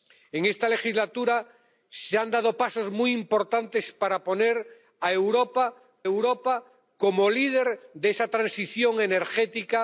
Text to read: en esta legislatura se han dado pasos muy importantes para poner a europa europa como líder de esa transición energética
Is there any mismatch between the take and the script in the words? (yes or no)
no